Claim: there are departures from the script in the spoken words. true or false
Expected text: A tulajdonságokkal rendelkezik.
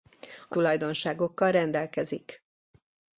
false